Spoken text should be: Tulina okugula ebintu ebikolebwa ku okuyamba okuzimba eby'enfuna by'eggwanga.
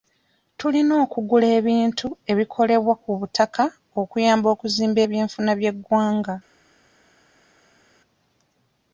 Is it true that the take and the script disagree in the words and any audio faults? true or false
true